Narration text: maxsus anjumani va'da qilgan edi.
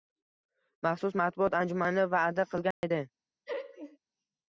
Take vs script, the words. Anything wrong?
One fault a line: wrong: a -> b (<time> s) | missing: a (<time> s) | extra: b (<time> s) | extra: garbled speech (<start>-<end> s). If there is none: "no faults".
extra: matbuot (1.2 s)